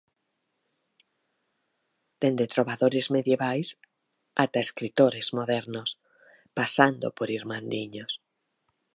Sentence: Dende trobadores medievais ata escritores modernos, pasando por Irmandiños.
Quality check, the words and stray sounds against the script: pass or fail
pass